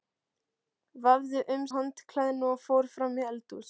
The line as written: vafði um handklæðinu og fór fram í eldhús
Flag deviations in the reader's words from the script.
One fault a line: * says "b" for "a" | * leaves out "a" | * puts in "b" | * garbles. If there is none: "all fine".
all fine